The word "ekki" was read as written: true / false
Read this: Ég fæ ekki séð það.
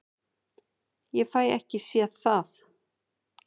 true